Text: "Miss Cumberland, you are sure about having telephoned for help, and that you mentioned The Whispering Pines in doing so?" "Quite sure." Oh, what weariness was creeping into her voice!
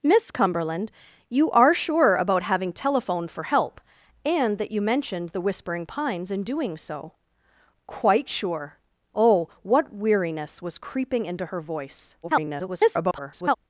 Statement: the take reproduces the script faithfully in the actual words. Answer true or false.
false